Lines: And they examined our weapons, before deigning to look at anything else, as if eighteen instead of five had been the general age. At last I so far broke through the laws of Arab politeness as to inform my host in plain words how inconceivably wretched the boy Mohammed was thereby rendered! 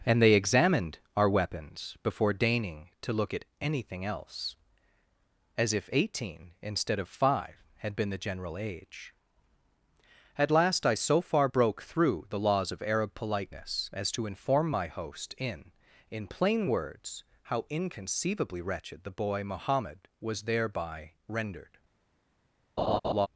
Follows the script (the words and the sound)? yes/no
no